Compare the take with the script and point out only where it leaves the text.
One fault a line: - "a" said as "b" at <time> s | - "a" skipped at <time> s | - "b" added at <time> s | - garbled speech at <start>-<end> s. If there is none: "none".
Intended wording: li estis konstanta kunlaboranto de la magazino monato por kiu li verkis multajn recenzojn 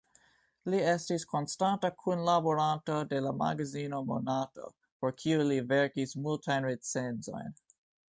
none